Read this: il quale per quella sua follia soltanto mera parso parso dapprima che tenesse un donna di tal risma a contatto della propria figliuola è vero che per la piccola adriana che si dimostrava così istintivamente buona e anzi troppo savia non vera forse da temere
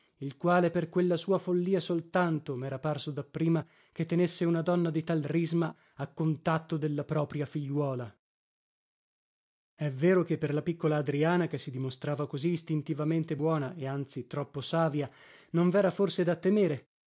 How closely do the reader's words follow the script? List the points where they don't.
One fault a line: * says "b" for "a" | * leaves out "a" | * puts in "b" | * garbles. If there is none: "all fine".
* leaves out "parso"
* says "una" for "un"